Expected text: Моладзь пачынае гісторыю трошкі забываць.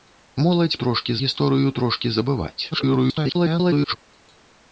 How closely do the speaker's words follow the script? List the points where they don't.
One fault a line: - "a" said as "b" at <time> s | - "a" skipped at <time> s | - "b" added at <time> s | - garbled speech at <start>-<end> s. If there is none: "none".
- "пачынае" said as "трошкі" at 0.8 s
- garbled speech at 2.7-4.0 s